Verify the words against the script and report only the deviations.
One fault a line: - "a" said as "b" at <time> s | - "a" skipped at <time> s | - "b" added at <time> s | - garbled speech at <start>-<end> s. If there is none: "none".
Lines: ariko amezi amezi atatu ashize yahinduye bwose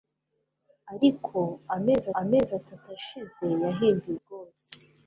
none